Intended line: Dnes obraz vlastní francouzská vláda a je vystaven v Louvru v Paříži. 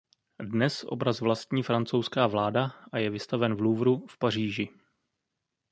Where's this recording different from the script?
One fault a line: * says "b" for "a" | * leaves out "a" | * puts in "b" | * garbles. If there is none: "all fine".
all fine